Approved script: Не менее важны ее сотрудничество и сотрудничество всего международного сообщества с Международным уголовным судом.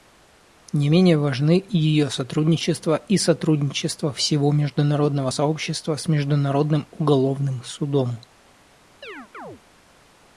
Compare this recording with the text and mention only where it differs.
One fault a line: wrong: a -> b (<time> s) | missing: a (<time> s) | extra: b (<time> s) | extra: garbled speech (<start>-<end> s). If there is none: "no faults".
no faults